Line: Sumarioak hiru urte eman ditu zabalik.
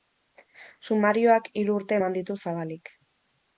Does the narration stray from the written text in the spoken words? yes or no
no